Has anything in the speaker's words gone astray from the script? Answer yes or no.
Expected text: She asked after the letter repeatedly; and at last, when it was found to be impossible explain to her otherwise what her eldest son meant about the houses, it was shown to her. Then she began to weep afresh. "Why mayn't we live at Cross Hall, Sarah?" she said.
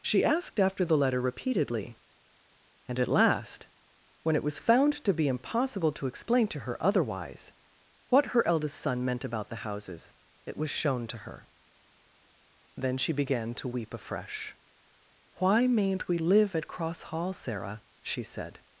yes